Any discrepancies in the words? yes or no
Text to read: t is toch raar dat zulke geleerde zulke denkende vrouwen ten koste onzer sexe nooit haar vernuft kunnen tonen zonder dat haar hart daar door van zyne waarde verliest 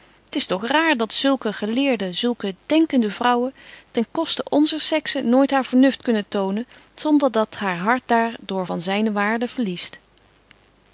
no